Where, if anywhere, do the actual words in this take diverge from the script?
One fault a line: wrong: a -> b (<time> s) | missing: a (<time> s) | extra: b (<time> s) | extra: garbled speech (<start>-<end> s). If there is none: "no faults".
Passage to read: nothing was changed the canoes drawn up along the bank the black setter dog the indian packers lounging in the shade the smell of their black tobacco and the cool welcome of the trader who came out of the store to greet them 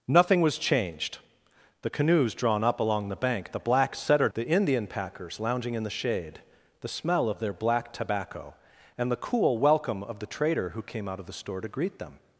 missing: dog (4.3 s)